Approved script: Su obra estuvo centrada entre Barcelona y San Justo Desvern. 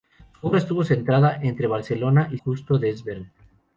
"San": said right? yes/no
no